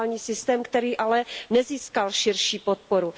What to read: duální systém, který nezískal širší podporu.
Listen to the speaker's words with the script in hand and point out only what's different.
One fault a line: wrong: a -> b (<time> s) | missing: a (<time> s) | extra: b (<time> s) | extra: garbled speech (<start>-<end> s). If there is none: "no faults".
extra: ale (0.9 s)